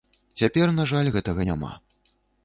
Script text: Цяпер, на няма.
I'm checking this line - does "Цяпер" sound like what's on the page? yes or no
yes